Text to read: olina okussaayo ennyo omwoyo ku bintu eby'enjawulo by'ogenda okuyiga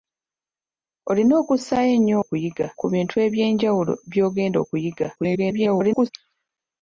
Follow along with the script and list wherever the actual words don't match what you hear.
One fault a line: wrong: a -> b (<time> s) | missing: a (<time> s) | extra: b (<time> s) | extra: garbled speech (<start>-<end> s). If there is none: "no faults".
wrong: omwoyo -> okuyiga (2.2 s)
extra: garbled speech (5.2-6.1 s)